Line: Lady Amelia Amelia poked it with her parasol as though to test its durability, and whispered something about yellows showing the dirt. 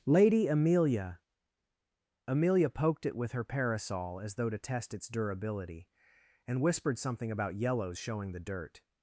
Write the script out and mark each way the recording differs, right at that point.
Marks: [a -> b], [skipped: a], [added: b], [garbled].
Lady Amelia Amelia poked it with her parasol as though to test its durability, and whispered something about yellows showing the dirt.